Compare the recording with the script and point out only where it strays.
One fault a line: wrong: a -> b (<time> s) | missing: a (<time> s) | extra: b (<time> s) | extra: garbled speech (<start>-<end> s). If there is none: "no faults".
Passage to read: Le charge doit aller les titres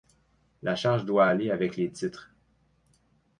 wrong: Le -> La (0.6 s)
extra: avec (1.5 s)